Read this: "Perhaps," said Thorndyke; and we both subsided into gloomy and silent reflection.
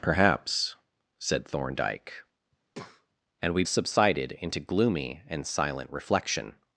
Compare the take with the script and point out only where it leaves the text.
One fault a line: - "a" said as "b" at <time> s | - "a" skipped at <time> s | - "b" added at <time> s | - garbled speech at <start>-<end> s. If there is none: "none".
- "both" skipped at 3.6 s